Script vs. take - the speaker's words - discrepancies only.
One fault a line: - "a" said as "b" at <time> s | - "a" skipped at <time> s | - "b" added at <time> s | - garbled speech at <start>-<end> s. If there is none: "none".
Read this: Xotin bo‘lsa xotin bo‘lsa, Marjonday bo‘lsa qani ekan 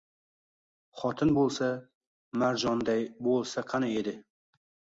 - "xotin bo‘lsa" skipped at 1.7 s
- "ekan" said as "edi" at 4.1 s